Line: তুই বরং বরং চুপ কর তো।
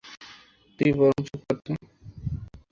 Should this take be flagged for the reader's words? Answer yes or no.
yes